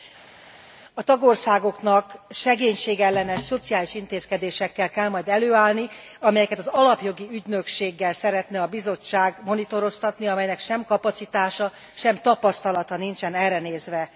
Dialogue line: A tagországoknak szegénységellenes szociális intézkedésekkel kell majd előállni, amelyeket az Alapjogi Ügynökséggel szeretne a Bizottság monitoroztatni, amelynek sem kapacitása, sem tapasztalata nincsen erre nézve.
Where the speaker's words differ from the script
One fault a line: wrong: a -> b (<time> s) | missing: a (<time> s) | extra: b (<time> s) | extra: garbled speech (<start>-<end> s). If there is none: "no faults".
no faults